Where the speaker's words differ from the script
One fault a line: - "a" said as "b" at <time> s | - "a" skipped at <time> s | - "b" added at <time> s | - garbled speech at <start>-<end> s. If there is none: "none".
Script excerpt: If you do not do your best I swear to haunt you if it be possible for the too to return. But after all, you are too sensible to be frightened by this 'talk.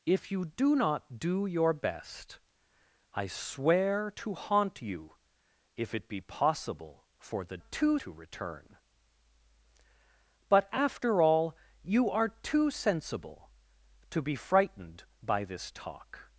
none